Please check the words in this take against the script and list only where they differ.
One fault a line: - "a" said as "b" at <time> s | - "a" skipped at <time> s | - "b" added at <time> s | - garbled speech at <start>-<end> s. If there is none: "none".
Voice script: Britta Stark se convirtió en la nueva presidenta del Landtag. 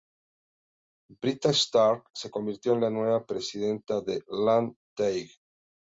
none